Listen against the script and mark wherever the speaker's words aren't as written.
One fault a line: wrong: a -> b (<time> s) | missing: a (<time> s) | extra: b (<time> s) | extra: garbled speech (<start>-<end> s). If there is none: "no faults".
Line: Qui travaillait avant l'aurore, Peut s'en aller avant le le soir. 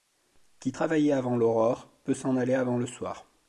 missing: le (2.9 s)